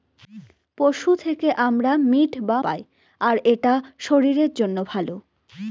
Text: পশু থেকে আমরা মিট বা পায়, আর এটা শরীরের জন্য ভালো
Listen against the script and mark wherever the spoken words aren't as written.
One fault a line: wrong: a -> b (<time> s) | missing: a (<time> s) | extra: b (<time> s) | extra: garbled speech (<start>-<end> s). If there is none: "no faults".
no faults